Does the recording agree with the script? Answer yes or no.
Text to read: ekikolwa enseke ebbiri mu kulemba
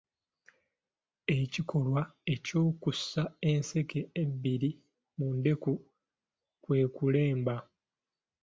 no